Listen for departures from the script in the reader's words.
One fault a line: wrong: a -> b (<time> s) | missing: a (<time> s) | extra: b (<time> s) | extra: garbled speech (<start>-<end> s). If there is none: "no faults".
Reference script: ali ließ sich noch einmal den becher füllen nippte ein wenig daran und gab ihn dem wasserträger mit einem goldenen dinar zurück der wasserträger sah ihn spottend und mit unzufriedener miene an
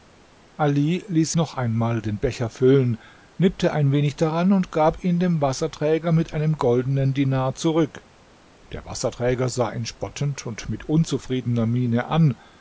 missing: sich (1.3 s)